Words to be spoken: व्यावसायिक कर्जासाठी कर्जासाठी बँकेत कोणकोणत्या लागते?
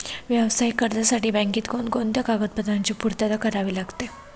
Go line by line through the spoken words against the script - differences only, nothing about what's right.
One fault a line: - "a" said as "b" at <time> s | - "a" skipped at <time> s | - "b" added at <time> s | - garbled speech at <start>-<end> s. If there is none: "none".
- "कर्जासाठी" skipped at 1.3 s
- "कागदपत्रांची पूर्तता करावी" added at 2.2 s